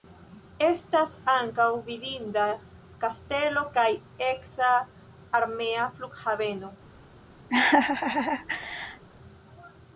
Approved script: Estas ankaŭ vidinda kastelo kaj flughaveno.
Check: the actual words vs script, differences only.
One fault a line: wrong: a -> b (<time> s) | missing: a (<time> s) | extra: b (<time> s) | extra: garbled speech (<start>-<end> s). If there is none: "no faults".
extra: eksa armea (4.3 s)